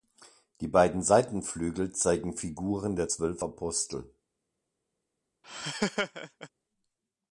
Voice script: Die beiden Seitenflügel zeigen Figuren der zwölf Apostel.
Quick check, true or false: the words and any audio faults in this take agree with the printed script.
false